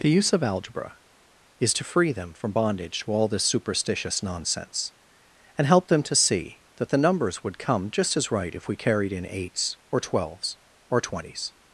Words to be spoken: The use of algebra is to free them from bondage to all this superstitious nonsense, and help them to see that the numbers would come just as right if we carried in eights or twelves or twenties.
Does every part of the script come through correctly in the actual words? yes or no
yes